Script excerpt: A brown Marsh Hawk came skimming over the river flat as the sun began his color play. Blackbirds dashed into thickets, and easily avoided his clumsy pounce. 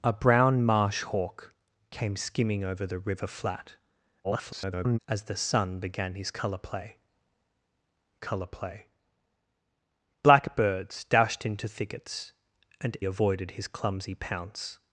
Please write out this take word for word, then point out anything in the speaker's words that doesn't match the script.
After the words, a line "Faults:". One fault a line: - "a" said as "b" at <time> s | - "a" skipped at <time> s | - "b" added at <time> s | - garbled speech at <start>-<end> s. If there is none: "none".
A brown Marsh Hawk came skimming over the river flat [garbled] as the sun began his color play color play. Blackbirds dashed into thickets, and avoided his clumsy pounce.
Faults:
- garbled speech at 4.2-5.0 s
- "color play" added at 8.2 s
- "easily" skipped at 13.0 s